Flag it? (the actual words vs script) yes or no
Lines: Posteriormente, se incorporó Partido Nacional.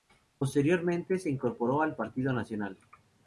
yes